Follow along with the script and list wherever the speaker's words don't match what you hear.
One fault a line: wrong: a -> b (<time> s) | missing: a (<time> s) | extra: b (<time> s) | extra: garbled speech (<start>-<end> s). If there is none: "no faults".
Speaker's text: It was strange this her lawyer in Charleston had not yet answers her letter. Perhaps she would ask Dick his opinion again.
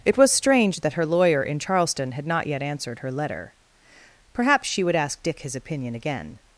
wrong: this -> that (0.8 s)
wrong: answers -> answered (2.6 s)